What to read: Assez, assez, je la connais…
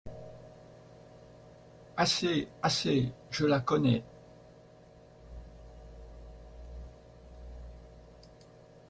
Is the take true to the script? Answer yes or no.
yes